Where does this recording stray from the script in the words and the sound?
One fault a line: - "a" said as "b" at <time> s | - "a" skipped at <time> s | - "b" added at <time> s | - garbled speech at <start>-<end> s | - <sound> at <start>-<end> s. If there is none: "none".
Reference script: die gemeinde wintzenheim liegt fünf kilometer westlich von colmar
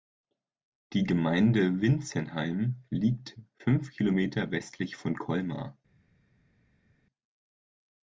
none